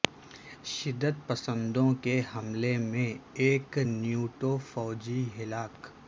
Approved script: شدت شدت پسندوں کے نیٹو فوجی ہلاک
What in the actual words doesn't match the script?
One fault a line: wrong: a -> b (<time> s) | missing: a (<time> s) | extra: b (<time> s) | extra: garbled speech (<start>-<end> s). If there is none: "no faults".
missing: شدت (1.1 s)
extra: حملے میں ایک (2.3 s)